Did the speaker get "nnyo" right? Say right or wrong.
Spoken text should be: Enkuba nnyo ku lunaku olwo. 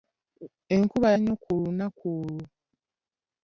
right